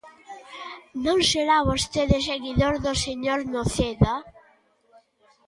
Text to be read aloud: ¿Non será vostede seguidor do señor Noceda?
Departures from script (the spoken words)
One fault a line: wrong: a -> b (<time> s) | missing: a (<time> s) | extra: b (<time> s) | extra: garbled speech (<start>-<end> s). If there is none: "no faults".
no faults